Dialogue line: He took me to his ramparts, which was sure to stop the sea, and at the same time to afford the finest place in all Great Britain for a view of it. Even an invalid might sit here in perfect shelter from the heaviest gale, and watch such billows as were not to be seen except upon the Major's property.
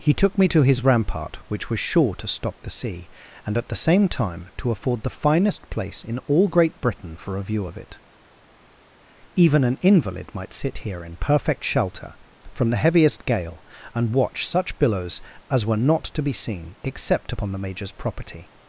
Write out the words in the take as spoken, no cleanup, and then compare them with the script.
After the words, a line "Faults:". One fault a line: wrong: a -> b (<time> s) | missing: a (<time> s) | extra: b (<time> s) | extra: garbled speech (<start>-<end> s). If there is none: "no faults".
He took me to his rampart, which was sure to stop the sea, and at the same time to afford the finest place in all Great Britain for a view of it. Even an invalid might sit here in perfect shelter from the heaviest gale, and watch such billows as were not to be seen except upon the Major's property.
Faults:
wrong: ramparts -> rampart (0.8 s)